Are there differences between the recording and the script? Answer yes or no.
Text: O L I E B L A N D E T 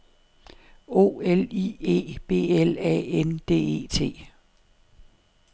no